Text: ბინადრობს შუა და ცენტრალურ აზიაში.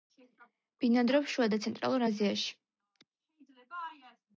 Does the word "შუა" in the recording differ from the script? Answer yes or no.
no